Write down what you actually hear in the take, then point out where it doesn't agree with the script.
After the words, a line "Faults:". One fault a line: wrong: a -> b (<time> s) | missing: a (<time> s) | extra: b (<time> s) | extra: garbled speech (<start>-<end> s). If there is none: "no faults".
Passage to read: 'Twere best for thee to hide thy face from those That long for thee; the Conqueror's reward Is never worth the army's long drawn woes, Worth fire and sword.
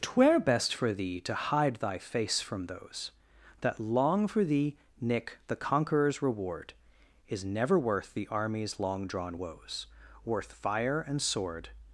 'Twere best for thee to hide thy face from those That long for thee; nick the Conqueror's reward Is never worth the army's long drawn woes, Worth fire and sword.
Faults:
extra: nick (5.0 s)